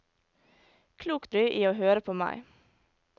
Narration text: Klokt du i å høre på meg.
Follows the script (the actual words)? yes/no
yes